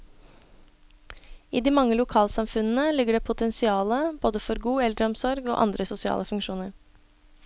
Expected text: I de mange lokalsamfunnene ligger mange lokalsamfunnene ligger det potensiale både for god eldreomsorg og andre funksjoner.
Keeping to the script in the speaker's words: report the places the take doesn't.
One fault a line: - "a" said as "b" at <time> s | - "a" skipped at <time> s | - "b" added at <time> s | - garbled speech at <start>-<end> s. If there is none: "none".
- "mange lokalsamfunnene ligger" skipped at 3.2 s
- "sosiale" added at 5.9 s